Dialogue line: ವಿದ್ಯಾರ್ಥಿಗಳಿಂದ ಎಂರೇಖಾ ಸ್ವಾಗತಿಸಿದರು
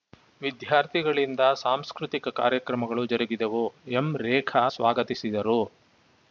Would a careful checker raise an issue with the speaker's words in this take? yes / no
yes